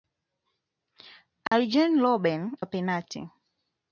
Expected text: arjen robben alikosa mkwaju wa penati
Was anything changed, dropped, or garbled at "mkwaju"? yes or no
yes